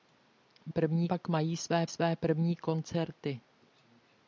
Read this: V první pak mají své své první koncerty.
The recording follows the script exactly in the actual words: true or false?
true